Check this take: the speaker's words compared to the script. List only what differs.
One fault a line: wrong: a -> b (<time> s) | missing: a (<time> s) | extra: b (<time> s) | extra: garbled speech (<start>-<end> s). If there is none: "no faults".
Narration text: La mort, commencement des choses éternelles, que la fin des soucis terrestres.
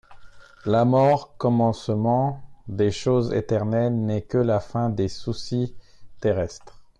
extra: n'est (3.9 s)